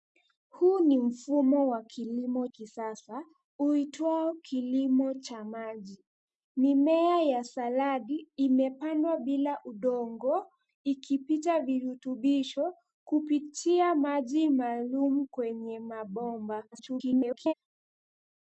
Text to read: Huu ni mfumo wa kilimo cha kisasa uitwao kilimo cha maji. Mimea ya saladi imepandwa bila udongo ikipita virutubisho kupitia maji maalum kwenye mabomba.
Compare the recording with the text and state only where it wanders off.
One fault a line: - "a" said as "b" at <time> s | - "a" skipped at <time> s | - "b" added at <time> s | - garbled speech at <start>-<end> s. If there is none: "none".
- "cha" skipped at 2.5 s
- garbled speech at 16.7-17.5 s